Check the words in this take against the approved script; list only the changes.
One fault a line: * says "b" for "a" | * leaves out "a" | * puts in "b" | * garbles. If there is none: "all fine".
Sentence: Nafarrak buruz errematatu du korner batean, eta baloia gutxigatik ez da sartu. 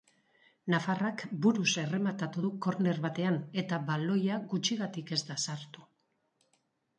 all fine